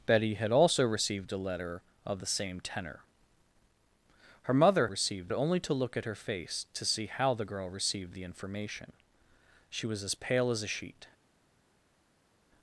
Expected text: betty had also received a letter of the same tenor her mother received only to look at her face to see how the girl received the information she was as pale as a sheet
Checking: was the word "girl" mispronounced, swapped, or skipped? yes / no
no